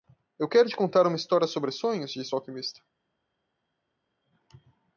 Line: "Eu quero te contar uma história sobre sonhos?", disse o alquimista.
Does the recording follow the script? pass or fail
pass